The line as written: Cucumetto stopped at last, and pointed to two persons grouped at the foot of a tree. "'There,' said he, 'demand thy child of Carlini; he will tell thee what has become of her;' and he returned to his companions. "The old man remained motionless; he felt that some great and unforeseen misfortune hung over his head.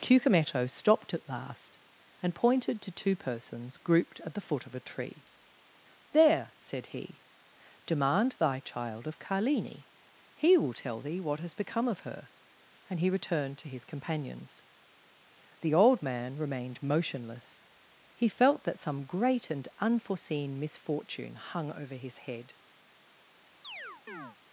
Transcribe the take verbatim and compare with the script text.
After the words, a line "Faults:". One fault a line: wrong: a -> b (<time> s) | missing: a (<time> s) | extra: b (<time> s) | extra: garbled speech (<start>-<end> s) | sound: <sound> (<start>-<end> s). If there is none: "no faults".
Cucumetto stopped at last, and pointed to two persons grouped at the foot of a tree. "'There,' said he, 'demand thy child of Carlini; he will tell thee what has become of her;' and he returned to his companions. "The old man remained motionless; he felt that some great and unforeseen misfortune hung over his head.
Faults:
sound: chirp (23.6-24.4 s)